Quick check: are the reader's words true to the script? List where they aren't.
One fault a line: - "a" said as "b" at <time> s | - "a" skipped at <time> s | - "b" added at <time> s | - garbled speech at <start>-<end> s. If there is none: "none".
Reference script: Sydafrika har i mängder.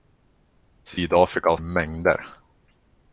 none